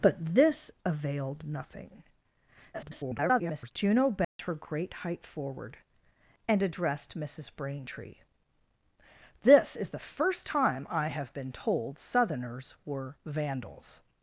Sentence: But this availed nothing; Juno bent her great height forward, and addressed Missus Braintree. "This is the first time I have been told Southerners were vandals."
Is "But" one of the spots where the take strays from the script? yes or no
no